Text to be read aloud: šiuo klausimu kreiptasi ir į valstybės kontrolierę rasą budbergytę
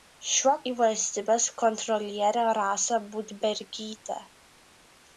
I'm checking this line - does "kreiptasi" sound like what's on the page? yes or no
no